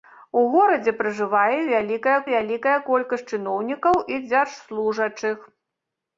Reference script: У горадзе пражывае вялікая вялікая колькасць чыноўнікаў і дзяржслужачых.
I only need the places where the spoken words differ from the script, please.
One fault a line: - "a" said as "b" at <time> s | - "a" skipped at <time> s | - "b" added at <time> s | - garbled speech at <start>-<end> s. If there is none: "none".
none